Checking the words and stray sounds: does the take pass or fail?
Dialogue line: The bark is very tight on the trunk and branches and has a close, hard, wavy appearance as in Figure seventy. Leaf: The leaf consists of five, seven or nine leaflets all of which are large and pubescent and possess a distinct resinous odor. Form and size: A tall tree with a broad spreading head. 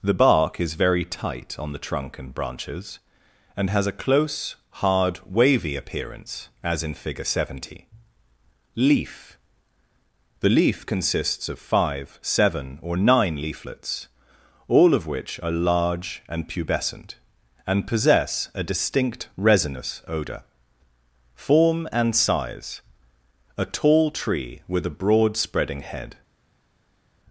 pass